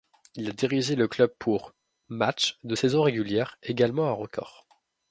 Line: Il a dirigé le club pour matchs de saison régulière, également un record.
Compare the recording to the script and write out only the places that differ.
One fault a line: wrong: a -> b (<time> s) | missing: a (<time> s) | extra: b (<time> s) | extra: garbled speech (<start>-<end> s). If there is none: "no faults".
no faults